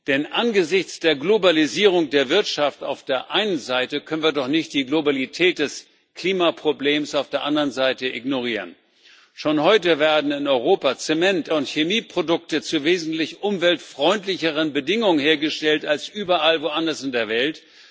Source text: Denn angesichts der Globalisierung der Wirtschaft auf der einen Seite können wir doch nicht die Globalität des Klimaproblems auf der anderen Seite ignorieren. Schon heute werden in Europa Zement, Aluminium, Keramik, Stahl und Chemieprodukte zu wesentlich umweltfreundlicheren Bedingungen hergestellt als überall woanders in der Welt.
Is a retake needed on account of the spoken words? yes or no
yes